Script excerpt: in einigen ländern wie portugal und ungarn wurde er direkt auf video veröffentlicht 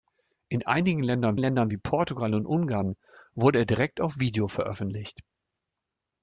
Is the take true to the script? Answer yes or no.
no